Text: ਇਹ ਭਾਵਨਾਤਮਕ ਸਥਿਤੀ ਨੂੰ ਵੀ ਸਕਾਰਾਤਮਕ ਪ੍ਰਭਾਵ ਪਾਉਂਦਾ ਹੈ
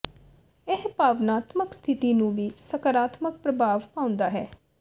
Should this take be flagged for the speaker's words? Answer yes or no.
no